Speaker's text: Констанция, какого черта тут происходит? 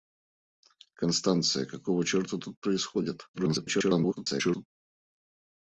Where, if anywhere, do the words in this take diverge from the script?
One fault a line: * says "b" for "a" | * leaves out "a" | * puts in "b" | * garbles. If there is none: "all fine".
* garbles